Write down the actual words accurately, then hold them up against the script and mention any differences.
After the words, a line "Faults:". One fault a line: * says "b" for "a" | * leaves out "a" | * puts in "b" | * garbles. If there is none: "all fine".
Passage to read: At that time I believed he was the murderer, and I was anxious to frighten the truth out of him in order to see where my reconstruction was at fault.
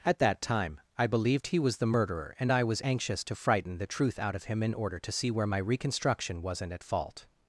At that time I believed he was the murderer, and I was anxious to frighten the truth out of him in order to see where my reconstruction wasn't at fault.
Faults:
* says "wasn't" for "was"